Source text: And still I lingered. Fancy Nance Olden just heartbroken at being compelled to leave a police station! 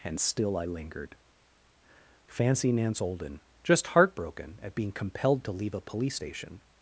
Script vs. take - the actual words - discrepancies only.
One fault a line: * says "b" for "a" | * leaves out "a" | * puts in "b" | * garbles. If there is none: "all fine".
all fine